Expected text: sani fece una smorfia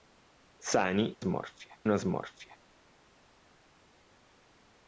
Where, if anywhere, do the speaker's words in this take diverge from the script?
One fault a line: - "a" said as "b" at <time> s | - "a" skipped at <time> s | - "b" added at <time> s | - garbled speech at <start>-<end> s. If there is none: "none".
- "fece" said as "smorfia" at 1.2 s